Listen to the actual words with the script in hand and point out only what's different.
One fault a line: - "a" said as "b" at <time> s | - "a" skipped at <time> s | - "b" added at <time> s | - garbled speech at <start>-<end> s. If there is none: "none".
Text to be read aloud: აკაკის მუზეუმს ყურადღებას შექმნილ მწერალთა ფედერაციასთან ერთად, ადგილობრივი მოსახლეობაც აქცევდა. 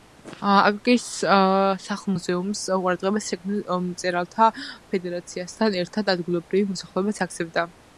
- "სახლ" added at 1.8 s